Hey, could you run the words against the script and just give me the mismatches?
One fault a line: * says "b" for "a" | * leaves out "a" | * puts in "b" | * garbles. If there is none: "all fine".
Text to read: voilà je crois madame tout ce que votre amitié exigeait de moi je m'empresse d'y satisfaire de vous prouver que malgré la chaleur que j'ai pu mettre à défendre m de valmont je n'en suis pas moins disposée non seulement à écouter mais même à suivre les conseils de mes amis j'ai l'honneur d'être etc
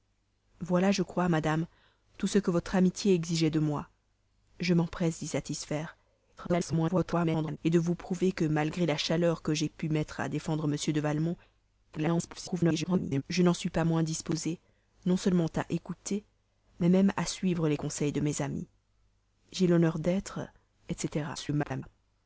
* garbles
* garbles
* garbles